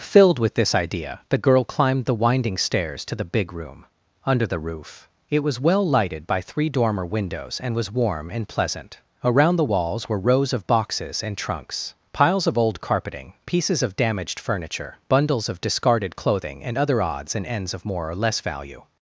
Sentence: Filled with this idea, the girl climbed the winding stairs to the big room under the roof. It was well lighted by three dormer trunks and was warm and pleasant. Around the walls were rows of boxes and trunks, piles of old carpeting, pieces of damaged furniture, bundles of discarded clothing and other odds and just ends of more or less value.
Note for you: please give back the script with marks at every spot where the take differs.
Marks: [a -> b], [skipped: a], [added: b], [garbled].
Filled with this idea, the girl climbed the winding stairs to the big room under the roof. It was well lighted by three dormer [trunks -> windows] and was warm and pleasant. Around the walls were rows of boxes and trunks, piles of old carpeting, pieces of damaged furniture, bundles of discarded clothing and other odds and [skipped: just] ends of more or less value.